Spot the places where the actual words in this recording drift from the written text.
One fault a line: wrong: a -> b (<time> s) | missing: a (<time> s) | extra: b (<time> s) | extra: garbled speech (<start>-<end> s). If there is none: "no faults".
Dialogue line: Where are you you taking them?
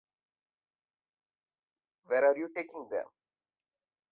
missing: you (2.5 s)